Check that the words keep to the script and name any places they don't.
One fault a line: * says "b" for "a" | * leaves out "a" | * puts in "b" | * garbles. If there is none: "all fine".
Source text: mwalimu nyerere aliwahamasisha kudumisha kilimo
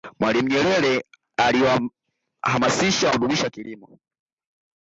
all fine